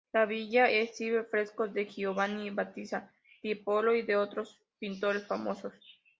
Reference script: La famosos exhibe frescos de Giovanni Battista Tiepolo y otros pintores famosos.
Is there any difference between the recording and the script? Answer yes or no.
yes